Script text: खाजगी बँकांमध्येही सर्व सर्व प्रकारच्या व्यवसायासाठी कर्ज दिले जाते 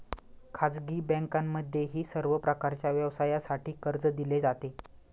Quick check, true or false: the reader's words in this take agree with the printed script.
false